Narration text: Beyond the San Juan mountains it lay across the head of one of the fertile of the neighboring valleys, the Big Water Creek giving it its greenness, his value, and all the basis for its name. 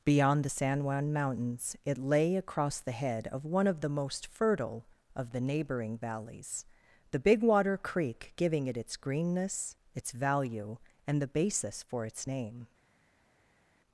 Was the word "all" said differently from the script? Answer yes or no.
yes